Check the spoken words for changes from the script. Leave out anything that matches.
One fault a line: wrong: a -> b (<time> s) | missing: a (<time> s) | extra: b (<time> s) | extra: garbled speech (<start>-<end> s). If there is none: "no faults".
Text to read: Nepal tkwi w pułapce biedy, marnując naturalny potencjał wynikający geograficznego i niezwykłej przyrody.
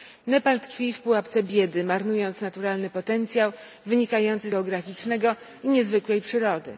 no faults